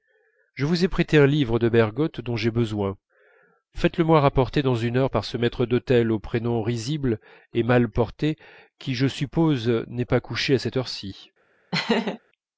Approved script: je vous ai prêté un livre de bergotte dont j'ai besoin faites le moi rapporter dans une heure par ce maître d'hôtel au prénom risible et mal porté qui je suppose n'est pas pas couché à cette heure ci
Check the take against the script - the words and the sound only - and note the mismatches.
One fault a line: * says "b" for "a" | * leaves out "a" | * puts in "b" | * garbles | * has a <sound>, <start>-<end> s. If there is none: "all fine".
* leaves out "pas"
* has a laugh, 11.7-12.2 s